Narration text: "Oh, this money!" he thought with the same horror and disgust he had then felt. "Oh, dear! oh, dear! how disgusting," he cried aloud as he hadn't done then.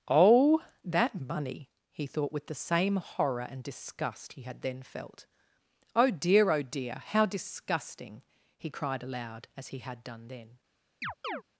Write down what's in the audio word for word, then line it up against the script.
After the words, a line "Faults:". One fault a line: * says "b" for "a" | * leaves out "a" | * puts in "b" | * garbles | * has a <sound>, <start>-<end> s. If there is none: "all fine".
"Oh, that money!" he thought with the same horror and disgust he had then felt. "Oh, dear! oh, dear! how disgusting," he cried aloud as he had done then.
Faults:
* says "that" for "this"
* says "had" for "hadn't"
* has a chirp, 11.0-11.4 s